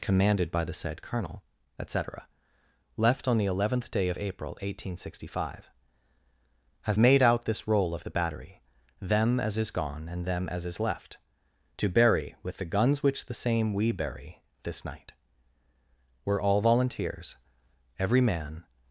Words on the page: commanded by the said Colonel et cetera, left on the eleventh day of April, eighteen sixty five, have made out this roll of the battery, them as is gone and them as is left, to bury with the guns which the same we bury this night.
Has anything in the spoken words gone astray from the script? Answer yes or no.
yes